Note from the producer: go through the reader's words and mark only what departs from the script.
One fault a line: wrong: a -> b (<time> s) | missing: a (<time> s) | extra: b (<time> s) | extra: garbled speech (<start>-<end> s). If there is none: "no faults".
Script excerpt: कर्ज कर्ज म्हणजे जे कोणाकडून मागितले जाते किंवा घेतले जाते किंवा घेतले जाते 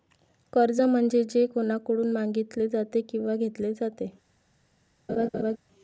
missing: कर्ज (0.8 s)
missing: किंवा घेतले जाते (4.1 s)